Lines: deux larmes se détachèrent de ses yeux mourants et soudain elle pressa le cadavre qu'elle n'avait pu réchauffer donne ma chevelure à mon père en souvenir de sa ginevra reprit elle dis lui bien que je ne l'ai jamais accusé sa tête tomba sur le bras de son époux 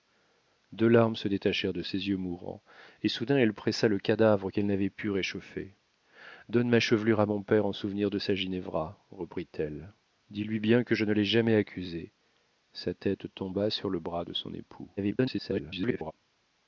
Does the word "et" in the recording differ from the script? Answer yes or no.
no